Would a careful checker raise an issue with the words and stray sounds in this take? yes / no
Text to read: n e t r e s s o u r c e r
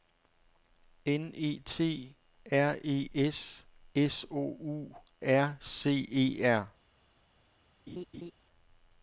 yes